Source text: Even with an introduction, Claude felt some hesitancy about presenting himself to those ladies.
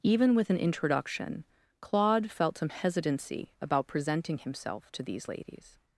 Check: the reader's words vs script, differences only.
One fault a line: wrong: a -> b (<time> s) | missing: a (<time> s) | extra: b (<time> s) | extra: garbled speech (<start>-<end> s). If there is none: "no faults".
wrong: those -> these (5.0 s)